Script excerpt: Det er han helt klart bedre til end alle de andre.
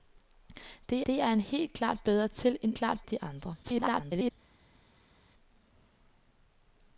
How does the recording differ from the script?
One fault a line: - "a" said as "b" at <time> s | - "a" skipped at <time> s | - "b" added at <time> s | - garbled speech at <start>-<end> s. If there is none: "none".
- "det" added at 1.1 s
- "alle" said as "klart" at 2.7 s
- garbled speech at 3.6-4.3 s